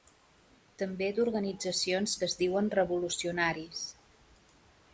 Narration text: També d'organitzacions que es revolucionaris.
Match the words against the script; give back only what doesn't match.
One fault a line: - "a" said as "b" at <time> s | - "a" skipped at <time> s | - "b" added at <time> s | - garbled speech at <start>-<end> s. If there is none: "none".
- "diuen" added at 2.4 s